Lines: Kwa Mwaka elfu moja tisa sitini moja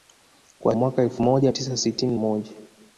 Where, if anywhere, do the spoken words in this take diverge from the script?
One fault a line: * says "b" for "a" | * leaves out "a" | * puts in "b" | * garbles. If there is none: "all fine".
all fine